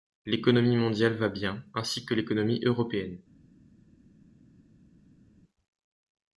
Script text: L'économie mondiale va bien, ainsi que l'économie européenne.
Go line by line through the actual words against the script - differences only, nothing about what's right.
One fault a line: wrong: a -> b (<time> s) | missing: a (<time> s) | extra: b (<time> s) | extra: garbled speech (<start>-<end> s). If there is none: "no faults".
no faults